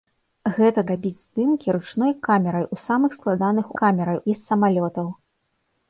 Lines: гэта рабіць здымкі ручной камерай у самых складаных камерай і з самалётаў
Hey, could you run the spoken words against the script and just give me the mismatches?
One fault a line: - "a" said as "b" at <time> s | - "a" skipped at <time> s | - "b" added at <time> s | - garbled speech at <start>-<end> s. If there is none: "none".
none